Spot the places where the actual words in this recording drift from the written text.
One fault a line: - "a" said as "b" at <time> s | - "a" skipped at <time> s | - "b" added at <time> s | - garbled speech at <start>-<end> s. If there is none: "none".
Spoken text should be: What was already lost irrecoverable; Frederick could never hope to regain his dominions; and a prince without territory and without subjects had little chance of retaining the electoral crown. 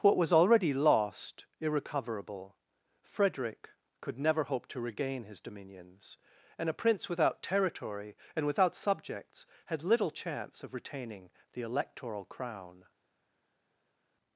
none